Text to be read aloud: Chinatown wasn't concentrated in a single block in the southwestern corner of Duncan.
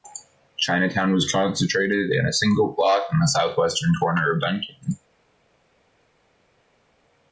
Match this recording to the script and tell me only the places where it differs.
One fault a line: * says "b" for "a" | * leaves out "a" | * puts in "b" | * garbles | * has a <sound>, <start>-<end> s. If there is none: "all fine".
* says "was" for "wasn't"